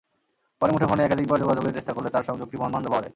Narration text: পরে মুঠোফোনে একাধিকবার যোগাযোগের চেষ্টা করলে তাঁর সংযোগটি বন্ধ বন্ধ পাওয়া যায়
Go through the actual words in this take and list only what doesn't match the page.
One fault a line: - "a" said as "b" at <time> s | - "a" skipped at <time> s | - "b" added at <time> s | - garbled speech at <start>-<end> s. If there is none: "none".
none